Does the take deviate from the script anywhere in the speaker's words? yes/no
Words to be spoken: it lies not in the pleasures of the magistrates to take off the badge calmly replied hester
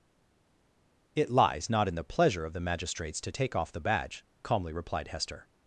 yes